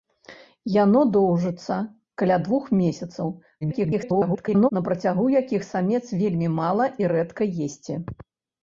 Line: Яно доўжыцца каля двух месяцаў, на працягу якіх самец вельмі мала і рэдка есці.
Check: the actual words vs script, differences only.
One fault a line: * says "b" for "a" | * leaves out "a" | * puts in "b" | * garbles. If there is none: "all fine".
* garbles